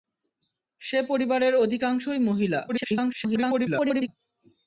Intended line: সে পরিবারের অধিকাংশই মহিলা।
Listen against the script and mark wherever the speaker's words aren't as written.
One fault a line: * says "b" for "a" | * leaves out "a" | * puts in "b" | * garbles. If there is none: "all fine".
* garbles